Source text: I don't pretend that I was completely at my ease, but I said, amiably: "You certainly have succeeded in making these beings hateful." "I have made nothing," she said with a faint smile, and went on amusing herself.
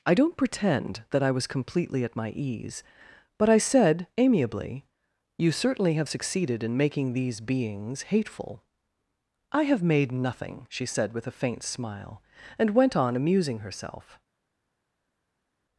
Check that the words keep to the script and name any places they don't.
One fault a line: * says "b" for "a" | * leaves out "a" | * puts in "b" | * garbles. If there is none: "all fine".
all fine